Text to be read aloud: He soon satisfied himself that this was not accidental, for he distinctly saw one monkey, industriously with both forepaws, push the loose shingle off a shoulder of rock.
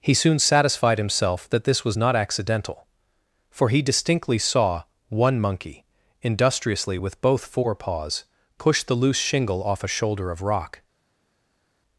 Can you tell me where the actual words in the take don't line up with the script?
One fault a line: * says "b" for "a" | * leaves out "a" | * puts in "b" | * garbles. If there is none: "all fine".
all fine